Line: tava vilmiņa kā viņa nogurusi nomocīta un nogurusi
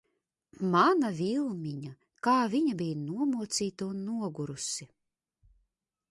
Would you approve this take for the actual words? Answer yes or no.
no